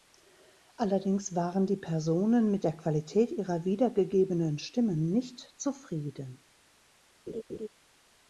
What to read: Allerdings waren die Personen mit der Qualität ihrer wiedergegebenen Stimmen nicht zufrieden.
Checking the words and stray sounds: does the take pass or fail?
fail